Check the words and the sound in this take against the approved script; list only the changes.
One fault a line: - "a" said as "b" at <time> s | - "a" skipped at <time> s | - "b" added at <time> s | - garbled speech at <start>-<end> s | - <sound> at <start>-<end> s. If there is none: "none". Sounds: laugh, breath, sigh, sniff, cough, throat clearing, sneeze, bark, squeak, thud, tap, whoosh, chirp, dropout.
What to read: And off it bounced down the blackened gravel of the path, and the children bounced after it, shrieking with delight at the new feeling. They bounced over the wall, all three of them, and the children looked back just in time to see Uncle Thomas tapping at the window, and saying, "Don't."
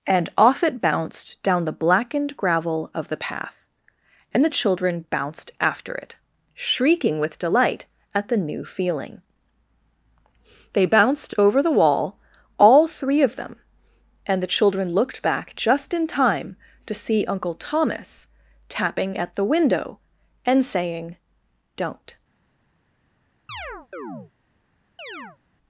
- chirp at 23.5-24.3 s
- chirp at 25.0-25.4 s